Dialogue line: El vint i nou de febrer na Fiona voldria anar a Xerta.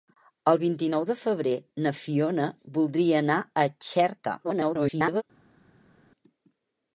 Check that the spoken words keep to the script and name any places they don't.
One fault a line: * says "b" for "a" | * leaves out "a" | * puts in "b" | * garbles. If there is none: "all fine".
* garbles